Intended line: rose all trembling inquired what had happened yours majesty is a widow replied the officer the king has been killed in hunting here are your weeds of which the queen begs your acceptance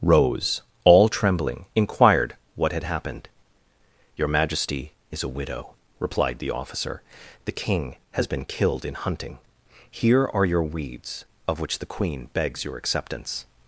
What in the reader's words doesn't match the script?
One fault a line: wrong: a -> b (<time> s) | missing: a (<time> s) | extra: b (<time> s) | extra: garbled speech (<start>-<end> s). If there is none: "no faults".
wrong: yours -> your (4.1 s)